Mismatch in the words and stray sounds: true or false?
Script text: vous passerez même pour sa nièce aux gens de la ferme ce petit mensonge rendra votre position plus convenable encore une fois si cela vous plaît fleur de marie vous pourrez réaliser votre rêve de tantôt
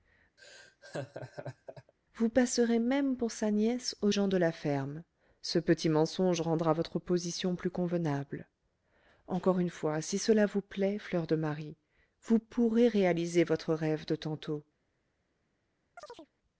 true